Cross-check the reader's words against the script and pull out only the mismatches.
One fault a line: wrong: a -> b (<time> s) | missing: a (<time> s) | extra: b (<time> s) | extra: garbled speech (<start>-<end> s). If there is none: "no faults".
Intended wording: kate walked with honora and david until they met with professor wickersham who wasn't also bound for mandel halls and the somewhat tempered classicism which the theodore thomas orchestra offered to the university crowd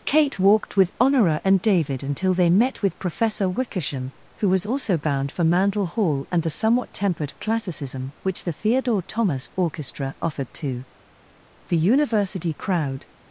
wrong: wasn't -> was (4.5 s)
wrong: halls -> hall (5.8 s)